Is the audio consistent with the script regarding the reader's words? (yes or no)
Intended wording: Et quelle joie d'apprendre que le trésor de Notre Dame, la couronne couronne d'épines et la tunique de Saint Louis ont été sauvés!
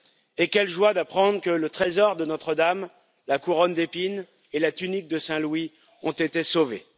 no